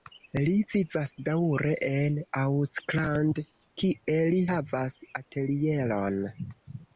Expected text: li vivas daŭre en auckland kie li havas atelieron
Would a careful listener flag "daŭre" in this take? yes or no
no